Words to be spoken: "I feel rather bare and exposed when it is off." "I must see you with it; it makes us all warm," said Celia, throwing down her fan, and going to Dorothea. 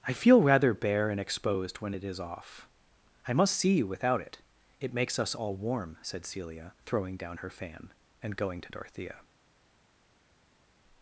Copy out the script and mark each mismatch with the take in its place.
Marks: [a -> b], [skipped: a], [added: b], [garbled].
"I feel rather bare and exposed when it is off." "I must see you [with -> without] it; it makes us all warm," said Celia, throwing down her fan, and going to Dorothea.